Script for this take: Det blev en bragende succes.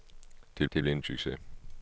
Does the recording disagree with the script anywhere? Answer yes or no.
yes